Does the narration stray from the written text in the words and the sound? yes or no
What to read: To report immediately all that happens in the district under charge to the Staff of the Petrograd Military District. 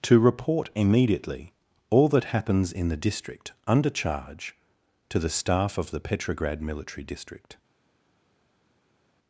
no